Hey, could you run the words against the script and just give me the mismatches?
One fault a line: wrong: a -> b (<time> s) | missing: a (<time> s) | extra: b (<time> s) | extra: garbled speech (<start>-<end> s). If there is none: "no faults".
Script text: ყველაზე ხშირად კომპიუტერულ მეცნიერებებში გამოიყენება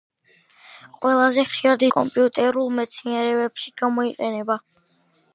no faults